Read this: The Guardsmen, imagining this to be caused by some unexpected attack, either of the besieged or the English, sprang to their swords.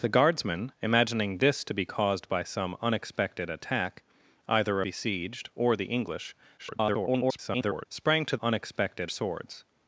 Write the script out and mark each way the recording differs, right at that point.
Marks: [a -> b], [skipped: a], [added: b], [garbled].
The Guardsmen, imagining this to be caused by some unexpected attack, either [skipped: of the] besieged or the English, [garbled] sprang to [their -> unexpected] swords.